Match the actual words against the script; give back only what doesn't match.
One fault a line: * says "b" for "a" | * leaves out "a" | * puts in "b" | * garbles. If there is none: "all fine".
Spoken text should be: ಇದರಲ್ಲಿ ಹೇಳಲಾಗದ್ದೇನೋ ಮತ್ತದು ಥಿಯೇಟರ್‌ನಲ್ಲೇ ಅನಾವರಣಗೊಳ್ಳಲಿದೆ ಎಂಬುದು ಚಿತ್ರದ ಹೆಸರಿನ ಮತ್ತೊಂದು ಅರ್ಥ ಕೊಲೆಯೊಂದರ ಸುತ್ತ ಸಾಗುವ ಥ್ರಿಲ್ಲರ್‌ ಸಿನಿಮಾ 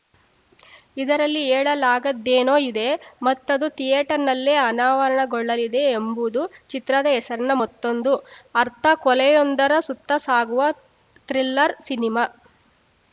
* puts in "ಇದೆ"